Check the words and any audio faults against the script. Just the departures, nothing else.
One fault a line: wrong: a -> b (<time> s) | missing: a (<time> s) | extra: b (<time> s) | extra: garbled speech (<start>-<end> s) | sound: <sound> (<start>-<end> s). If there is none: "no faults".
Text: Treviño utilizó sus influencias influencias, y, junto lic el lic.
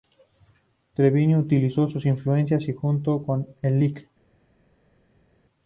missing: influencias (2.7 s)
wrong: lic -> con (3.2 s)